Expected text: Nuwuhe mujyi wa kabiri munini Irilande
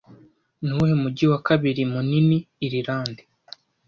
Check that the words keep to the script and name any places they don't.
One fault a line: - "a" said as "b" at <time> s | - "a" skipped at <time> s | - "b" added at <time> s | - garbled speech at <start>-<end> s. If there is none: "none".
none